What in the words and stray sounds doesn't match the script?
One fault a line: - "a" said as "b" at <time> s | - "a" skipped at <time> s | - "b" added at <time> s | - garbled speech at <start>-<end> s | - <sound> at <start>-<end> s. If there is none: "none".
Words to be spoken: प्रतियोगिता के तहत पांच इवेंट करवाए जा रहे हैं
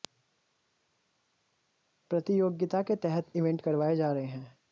- "पांच" skipped at 3.3 s